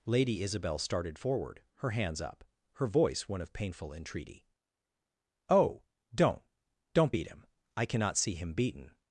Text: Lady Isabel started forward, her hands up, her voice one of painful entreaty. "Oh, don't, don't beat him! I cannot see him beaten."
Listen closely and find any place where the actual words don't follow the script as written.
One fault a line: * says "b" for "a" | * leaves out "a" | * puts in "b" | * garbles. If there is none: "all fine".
all fine